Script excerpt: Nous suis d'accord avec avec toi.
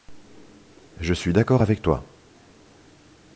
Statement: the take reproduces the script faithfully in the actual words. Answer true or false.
false